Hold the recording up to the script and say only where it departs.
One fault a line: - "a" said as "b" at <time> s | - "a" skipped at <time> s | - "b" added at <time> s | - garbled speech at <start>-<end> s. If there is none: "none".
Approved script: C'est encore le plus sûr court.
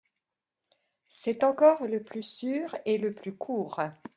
- "et le plus" added at 2.8 s